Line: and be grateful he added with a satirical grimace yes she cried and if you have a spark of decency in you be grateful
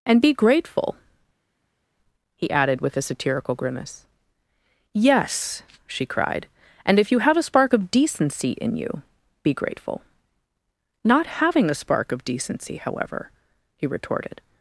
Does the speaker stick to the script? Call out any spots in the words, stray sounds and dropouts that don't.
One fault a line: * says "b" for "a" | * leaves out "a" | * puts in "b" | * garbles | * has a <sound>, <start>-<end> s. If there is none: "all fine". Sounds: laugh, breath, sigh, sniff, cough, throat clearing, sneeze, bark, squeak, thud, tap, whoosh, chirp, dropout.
* puts in "not having a spark of decency however he retorted"